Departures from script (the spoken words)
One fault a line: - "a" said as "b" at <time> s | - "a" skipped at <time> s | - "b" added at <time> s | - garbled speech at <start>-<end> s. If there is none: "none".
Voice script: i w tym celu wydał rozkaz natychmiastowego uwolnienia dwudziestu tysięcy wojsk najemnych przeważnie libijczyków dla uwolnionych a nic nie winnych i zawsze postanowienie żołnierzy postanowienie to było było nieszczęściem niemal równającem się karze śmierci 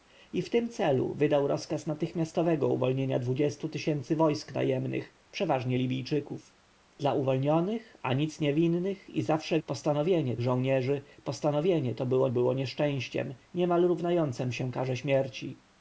none